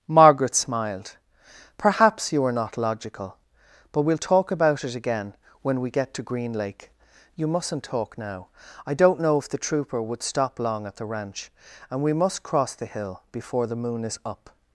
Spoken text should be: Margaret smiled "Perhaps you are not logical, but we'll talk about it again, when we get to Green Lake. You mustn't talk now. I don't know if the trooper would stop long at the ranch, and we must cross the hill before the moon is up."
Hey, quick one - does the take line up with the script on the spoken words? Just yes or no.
yes